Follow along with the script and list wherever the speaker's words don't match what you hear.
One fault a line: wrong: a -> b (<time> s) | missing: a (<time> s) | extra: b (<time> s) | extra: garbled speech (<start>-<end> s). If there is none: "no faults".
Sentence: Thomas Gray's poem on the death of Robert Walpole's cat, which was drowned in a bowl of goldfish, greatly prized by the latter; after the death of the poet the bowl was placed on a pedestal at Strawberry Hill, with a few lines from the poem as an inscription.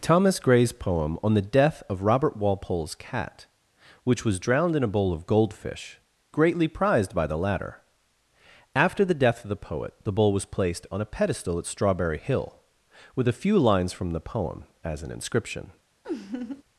no faults